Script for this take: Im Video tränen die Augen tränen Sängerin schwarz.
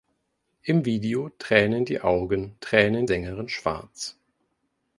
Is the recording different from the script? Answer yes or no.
no